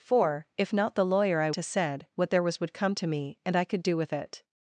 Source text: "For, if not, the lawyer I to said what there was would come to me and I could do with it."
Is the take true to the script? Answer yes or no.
yes